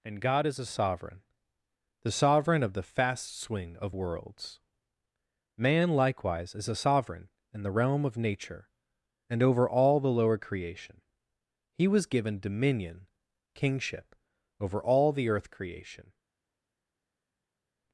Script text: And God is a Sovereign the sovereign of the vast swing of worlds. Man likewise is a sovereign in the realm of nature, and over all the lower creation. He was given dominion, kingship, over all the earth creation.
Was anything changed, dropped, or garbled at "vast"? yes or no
yes